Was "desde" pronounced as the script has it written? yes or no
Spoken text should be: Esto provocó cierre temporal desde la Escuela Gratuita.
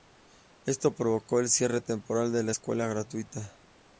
no